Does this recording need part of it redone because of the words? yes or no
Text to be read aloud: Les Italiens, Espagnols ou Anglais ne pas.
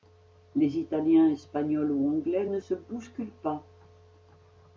yes